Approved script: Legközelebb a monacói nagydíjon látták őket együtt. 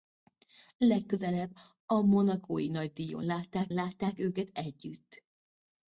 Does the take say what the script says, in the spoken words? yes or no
no